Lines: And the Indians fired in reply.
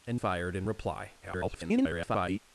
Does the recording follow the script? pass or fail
fail